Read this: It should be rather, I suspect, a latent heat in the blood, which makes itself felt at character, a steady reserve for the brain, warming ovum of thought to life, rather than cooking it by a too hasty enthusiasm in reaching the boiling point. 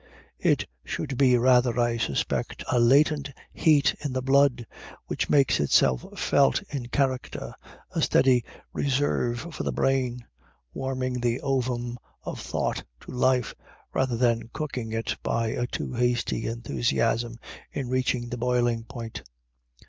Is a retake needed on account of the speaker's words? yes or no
yes